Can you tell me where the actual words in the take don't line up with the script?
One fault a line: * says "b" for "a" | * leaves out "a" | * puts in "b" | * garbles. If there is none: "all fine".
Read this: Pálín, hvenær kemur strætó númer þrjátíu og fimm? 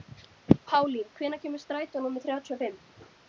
all fine